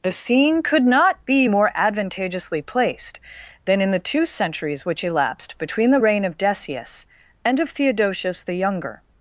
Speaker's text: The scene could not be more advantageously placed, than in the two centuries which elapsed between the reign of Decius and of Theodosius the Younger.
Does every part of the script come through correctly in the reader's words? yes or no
yes